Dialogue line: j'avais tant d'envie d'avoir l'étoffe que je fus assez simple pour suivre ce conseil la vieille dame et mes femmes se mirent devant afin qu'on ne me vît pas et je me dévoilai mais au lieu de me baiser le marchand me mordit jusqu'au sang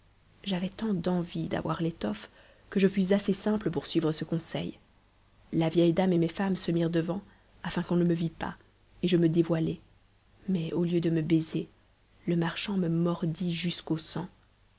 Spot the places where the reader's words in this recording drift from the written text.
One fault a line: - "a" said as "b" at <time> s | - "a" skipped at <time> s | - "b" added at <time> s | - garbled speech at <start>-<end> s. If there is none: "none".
none